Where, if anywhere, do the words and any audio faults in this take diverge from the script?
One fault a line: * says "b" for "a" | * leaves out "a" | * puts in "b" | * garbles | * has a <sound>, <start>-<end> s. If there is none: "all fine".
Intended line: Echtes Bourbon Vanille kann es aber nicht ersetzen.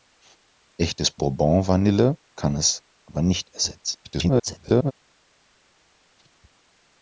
* garbles